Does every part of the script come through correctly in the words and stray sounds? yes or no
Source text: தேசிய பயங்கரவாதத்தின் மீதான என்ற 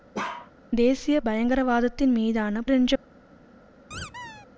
no